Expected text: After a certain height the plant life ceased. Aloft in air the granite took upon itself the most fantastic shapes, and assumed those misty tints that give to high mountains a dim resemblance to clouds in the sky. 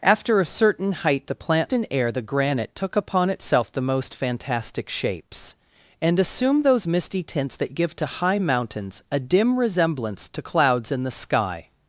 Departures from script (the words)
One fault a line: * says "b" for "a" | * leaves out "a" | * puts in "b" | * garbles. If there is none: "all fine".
* leaves out "life ceased Aloft"